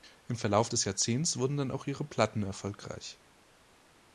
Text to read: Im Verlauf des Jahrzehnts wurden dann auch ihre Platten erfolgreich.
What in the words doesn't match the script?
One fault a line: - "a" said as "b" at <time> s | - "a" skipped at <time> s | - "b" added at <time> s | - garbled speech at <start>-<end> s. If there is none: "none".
none